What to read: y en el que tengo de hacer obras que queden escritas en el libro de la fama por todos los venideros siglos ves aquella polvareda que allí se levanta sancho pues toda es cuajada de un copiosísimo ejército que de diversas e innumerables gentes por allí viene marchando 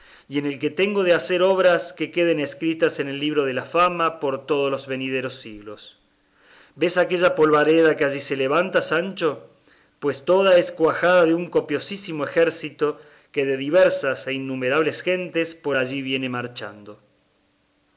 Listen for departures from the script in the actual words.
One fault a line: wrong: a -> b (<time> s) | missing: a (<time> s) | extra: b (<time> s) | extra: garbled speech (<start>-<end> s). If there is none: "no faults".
no faults